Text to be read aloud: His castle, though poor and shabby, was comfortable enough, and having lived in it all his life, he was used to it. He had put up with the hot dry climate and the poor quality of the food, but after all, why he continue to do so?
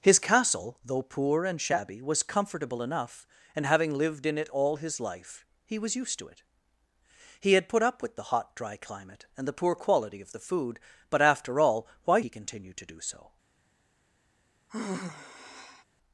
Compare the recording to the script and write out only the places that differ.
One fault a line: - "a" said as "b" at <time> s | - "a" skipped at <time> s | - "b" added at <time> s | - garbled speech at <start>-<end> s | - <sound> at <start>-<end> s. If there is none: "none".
- sigh at 14.7-15.8 s